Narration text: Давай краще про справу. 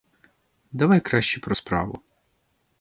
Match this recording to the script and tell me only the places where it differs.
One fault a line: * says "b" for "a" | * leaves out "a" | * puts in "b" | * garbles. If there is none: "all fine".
all fine